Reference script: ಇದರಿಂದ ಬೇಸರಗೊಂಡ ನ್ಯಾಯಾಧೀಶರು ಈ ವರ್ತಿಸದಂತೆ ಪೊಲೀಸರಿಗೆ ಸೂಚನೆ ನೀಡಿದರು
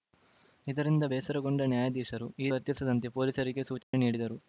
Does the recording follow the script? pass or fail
pass